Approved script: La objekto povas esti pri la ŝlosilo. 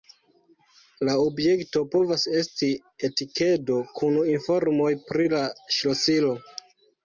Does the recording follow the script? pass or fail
fail